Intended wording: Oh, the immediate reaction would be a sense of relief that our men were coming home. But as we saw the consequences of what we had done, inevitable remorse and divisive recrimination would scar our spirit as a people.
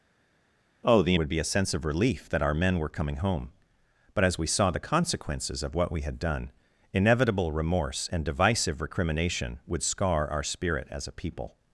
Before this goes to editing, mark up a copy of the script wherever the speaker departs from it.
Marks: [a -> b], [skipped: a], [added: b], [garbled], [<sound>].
Oh, the [skipped: immediate reaction] would be a sense of relief that our men were coming home. But as we saw the consequences of what we had done, inevitable remorse and divisive recrimination would scar our spirit as a people.